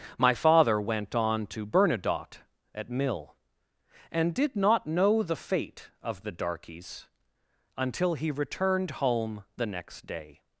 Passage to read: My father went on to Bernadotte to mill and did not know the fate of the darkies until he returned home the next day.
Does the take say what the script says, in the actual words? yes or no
no